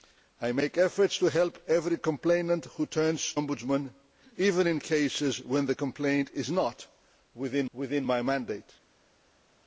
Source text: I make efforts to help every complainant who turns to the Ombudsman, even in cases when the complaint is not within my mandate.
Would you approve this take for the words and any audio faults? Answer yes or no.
no